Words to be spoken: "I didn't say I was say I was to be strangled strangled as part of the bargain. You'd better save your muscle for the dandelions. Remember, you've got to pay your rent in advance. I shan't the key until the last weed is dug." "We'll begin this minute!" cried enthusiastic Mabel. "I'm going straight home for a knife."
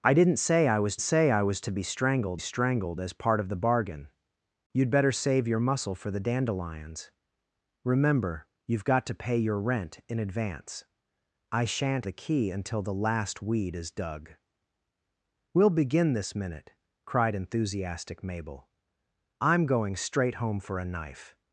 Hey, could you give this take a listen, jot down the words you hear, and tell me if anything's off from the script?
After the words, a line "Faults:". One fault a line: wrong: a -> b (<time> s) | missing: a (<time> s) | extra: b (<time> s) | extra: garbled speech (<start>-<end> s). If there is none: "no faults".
"I didn't say I was say I was to be strangled strangled as part of the bargain. You'd better save your muscle for the dandelions. Remember, you've got to pay your rent in advance. I shan't the key until the last weed is dug." "We'll begin this minute!" cried enthusiastic Mabel. "I'm going straight home for a knife."
Faults:
no faults